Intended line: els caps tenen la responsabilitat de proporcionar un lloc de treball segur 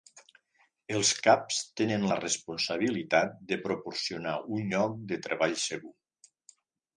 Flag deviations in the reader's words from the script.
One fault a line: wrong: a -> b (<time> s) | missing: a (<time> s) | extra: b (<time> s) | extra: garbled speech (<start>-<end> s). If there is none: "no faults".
no faults